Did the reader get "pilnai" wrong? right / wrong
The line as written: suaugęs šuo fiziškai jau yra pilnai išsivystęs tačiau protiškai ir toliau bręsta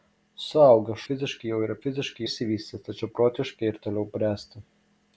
wrong